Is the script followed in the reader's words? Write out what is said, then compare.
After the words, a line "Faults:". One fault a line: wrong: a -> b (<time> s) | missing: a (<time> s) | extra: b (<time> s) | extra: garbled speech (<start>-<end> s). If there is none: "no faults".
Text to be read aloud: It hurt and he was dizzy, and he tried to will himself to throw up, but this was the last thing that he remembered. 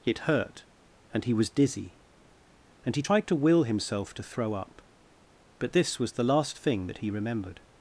It hurt and he was dizzy, and he tried to will himself to throw up, but this was the last thing that he remembered.
Faults:
no faults